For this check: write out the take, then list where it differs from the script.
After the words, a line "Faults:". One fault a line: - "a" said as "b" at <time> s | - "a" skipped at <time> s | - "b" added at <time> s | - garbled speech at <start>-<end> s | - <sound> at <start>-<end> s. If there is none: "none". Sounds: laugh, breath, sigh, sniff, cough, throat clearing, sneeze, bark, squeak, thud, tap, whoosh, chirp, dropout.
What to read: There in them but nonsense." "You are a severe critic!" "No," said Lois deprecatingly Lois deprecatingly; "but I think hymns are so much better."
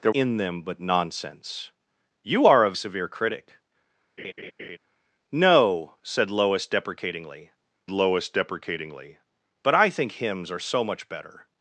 There in them but nonsense." "You are a severe critic!" "No," said Lois deprecatingly Lois deprecatingly; "but I think hymns are so much better."
Faults:
- laugh at 4.2-4.8 s